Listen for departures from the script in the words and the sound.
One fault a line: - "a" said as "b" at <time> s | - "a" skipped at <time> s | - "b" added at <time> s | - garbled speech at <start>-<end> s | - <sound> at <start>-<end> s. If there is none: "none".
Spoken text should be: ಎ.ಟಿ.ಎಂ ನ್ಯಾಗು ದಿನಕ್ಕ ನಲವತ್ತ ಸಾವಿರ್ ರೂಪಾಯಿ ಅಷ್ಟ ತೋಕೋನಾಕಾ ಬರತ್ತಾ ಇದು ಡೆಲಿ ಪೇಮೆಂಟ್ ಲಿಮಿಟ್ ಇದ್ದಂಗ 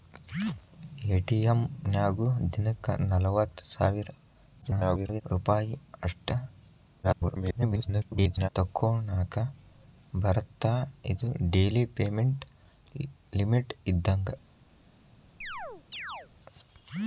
- garbled speech at 4.6-5.2 s
- garbled speech at 7.0-8.5 s
- chirp at 15.4-16.3 s